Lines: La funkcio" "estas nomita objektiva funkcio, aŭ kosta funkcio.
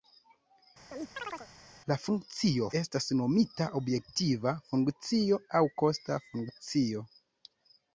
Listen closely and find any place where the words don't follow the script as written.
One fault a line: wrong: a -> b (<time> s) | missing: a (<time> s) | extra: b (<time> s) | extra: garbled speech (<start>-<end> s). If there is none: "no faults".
no faults